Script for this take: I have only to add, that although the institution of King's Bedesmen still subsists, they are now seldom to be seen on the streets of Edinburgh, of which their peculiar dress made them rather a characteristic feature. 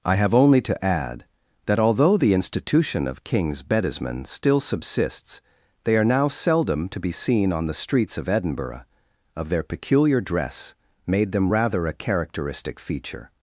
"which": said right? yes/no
no